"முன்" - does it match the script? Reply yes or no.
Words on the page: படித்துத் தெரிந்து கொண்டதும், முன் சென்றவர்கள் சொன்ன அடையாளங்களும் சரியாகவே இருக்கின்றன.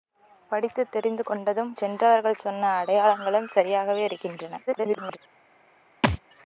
no